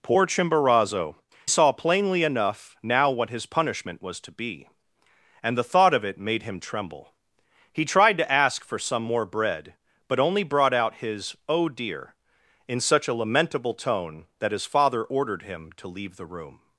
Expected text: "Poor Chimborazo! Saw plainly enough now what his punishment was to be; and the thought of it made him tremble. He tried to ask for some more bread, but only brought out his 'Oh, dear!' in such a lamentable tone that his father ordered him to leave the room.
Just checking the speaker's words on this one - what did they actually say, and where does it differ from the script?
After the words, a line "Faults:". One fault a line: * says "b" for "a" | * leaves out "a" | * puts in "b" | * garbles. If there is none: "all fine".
"Poor Chimborazo! Saw plainly enough now what his punishment was to be; and the thought of it made him tremble. He tried to ask for some more bread, but only brought out his 'Oh, dear!' in such a lamentable tone that his father ordered him to leave the room.
Faults:
all fine